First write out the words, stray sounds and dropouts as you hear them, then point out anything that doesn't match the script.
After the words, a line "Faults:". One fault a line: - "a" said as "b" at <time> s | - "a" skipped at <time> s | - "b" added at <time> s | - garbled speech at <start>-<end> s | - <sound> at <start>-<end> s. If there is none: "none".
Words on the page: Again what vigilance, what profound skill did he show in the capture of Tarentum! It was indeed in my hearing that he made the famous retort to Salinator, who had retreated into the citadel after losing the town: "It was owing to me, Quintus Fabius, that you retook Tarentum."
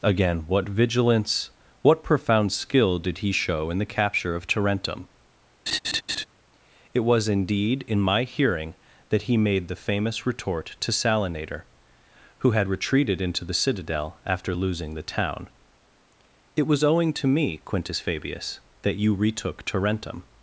Again what vigilance, what profound skill did he show in the capture of Tarentum! It was indeed in my hearing that he made the famous retort to Salinator, who had retreated into the citadel after losing the town: "It was owing to me, Quintus Fabius, that you retook Tarentum."
Faults:
- laugh at 5.7-6.3 s